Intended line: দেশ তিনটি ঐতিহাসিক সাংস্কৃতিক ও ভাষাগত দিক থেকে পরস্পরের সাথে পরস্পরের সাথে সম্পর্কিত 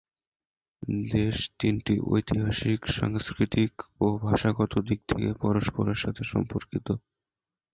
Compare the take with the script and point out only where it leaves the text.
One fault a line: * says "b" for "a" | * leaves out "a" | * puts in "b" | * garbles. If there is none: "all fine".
* leaves out "পরস্পরের সাথে"